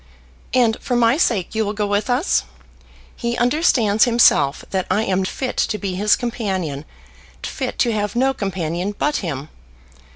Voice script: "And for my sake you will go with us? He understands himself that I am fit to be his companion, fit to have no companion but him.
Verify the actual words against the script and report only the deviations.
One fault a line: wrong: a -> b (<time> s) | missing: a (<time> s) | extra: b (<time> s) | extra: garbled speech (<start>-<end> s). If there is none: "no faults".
no faults